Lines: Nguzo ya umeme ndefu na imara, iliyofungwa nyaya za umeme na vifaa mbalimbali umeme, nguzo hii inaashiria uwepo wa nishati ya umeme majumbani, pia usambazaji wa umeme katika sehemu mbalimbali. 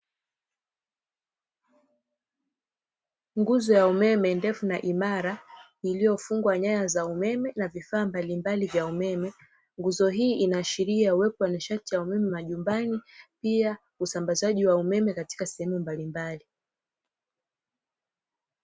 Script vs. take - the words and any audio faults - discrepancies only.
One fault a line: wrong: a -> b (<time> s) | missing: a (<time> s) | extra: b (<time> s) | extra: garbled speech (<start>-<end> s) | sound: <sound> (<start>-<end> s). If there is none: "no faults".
extra: vya (8.7 s)